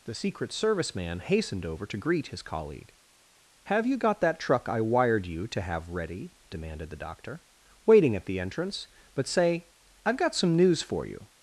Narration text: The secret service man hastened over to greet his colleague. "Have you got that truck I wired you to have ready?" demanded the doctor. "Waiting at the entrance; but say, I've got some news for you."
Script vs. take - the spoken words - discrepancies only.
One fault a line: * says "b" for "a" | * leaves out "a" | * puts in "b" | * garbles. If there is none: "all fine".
all fine